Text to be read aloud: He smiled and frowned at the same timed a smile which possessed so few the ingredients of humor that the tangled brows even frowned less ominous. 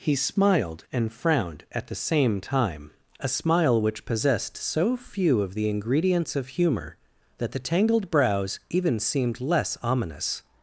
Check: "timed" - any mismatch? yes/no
yes